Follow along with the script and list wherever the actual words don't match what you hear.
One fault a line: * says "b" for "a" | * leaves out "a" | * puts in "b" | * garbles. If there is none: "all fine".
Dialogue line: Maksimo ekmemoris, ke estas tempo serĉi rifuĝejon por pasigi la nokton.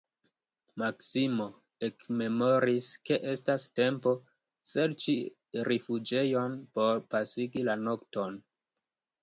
all fine